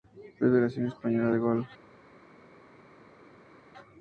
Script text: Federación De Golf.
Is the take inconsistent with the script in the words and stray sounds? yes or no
yes